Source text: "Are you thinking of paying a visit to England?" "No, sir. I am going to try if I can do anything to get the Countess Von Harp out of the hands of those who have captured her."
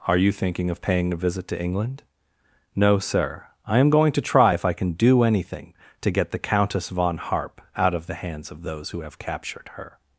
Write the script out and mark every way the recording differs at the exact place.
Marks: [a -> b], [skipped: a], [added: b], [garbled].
"Are you thinking of paying a visit to England?" "No, sir. I am going to try if I can do anything to get the Countess Von Harp out of the hands of those who have captured her."